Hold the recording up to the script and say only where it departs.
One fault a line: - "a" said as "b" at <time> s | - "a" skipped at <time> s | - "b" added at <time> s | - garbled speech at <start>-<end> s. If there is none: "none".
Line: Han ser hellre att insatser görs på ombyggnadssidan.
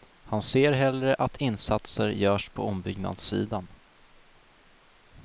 none